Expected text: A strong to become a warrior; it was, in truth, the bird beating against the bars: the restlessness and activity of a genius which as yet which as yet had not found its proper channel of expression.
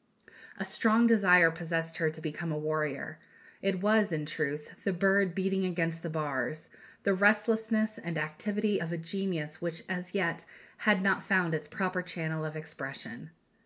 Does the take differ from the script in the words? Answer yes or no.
yes